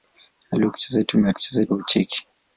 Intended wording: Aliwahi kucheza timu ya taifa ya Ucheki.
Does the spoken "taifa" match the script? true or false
false